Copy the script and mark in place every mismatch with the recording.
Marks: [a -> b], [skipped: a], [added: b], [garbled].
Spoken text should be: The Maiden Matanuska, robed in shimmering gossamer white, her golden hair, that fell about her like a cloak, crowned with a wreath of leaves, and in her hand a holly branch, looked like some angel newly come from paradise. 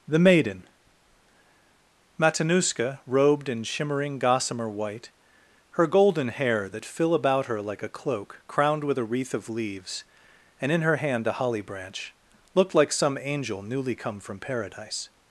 The Maiden Matanuska, robed in shimmering gossamer white, her golden hair, that [fell -> fill] about her like a cloak, crowned with a wreath of leaves, and in her hand a holly branch, looked like some angel newly come from paradise.